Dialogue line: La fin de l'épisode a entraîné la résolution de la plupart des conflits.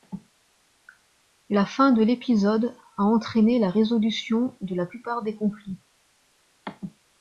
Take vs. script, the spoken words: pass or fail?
pass